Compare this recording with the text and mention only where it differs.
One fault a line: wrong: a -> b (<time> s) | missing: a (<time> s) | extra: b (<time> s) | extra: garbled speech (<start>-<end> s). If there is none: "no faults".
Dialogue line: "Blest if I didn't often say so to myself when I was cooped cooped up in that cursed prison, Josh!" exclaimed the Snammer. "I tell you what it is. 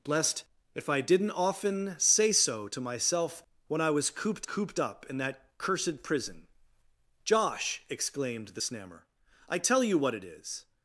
no faults